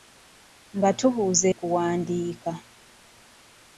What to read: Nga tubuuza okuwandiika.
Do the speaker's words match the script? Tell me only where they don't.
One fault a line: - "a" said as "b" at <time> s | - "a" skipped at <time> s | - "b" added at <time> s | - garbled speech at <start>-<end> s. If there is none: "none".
none